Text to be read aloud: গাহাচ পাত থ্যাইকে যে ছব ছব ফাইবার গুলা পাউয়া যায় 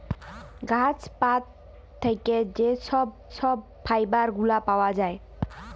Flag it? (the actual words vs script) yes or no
no